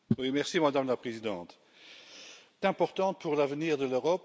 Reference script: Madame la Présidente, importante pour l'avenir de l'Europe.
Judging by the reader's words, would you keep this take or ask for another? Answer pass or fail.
pass